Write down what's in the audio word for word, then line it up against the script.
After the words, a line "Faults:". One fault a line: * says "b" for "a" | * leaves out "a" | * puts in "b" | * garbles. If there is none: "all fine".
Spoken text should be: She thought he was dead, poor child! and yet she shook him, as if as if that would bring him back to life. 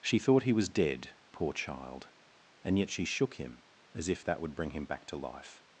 She thought he was dead, poor child! and yet she shook him, as if that would bring him back to life.
Faults:
* leaves out "as if"